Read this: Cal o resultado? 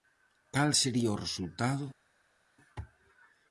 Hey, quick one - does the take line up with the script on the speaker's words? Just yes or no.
no